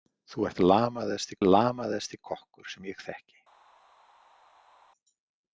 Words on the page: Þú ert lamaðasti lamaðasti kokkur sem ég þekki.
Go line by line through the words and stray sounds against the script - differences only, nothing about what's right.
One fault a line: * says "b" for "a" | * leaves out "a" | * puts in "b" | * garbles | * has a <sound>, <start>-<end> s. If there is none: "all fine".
all fine